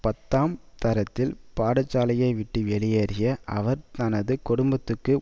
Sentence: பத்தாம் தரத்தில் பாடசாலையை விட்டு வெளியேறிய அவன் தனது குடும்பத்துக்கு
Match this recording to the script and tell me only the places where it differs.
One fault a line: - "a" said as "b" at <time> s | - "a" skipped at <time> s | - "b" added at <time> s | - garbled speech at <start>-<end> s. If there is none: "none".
- "அவன்" said as "அவர்" at 3.5 s